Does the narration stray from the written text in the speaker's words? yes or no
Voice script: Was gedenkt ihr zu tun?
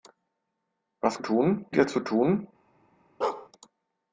yes